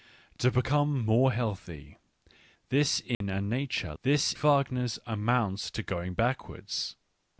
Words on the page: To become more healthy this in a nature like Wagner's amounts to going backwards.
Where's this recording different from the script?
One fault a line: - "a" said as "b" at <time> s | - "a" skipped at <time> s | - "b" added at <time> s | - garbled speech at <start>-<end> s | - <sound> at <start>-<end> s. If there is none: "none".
- dropout at 3.1-3.2 s
- "like" said as "this" at 4.0 s